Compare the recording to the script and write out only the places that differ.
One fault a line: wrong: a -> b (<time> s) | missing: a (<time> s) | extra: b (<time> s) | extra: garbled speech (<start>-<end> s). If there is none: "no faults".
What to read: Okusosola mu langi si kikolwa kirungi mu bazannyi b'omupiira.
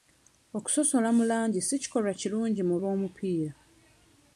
missing: bazannyi (2.8 s)